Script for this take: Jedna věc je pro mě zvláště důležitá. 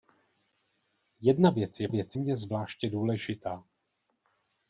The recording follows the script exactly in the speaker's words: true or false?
false